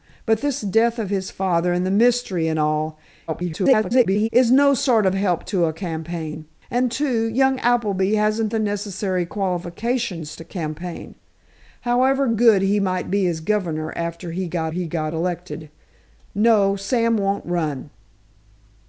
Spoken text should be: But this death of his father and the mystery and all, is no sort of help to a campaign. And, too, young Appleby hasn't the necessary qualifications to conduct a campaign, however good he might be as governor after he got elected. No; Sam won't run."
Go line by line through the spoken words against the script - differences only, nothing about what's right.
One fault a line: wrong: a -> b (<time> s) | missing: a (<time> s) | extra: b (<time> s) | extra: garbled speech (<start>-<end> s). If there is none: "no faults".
extra: garbled speech (3.3-4.3 s)
missing: to conduct (10.4 s)
extra: he got (14.7 s)